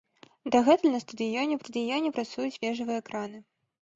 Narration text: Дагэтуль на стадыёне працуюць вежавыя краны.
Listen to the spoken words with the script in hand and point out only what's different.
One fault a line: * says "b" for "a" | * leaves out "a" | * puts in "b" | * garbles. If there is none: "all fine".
* puts in "стадыёне"